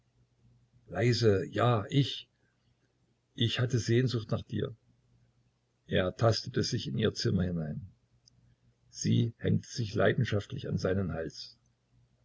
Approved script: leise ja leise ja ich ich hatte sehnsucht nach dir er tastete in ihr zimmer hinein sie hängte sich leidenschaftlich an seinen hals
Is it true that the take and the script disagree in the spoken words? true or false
true